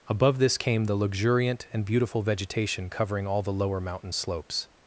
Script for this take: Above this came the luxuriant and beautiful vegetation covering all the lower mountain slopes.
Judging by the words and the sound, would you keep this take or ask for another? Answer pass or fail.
pass